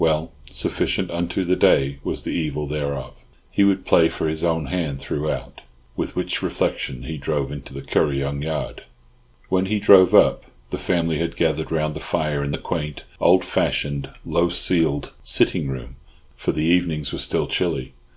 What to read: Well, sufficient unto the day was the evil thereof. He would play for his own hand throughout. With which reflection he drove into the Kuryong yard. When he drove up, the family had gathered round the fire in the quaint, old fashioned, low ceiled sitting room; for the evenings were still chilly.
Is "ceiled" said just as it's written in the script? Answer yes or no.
yes